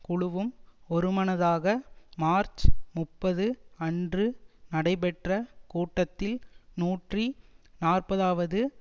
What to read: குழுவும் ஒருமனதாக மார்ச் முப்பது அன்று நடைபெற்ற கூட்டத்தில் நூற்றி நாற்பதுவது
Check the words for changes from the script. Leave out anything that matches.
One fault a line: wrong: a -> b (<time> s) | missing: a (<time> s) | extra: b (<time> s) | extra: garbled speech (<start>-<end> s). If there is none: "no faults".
no faults